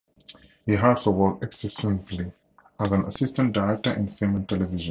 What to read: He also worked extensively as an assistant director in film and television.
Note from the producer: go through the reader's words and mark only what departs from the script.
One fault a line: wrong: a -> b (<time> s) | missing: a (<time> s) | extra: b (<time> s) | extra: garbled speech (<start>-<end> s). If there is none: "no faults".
no faults